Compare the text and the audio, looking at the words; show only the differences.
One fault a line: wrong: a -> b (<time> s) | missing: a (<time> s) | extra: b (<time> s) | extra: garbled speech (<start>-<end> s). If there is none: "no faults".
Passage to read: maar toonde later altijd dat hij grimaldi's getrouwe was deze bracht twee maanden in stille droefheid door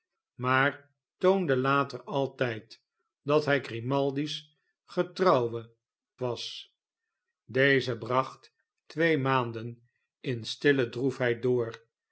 no faults